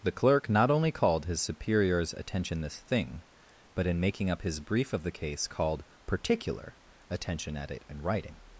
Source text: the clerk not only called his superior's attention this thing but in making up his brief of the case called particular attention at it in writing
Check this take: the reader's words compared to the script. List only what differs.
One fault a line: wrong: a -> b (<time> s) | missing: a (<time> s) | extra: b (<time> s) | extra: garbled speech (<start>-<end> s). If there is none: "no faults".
no faults